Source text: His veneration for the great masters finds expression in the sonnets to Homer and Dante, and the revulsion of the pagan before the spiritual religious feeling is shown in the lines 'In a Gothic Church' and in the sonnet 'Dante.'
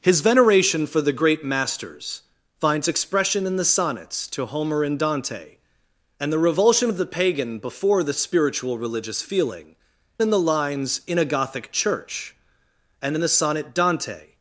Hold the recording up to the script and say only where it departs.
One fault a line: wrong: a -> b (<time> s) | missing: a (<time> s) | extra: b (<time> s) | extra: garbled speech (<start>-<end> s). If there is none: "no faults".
missing: is shown (9.8 s)